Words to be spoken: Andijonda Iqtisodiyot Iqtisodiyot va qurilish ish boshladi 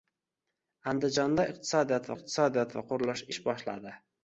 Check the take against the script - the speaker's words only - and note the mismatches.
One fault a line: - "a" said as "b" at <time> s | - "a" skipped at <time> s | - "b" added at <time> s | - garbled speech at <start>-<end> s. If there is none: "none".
none